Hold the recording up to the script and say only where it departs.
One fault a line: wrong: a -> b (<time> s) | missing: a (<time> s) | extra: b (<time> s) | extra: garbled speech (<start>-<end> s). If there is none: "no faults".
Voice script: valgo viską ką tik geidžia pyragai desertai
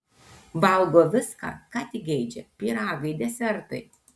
no faults